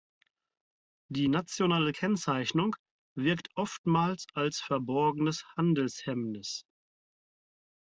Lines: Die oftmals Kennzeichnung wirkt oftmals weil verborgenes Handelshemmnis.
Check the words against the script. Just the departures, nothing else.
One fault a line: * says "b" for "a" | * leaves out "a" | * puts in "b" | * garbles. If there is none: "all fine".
* says "nationale" for "oftmals"
* says "als" for "weil"